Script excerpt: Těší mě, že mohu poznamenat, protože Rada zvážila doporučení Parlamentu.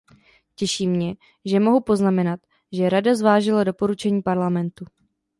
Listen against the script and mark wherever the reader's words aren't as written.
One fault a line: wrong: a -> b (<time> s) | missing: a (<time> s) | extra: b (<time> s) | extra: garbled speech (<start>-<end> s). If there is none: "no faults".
wrong: protože -> že (2.7 s)